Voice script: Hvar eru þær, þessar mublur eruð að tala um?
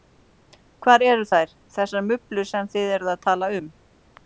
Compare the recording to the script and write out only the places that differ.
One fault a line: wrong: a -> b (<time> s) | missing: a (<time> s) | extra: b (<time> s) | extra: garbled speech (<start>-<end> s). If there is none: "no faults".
extra: sem þið (2.5 s)